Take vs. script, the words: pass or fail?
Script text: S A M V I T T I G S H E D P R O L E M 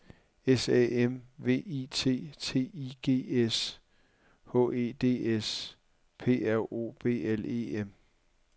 fail